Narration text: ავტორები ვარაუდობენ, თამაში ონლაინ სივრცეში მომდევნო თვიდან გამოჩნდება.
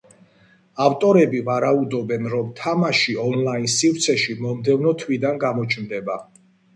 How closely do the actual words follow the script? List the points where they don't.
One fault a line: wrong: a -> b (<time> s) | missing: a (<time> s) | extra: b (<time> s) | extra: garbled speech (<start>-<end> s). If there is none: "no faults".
extra: რომ (2.3 s)